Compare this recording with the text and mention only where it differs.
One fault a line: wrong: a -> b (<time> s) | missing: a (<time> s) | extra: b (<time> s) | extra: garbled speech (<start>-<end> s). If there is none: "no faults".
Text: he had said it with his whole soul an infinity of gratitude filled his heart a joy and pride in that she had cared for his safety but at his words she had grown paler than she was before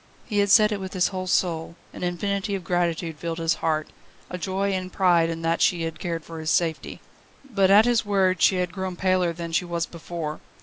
no faults